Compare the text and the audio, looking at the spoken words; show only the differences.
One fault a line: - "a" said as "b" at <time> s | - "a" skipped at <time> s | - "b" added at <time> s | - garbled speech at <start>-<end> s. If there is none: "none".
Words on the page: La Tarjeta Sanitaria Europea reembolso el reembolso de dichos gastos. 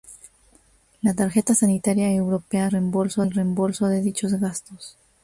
none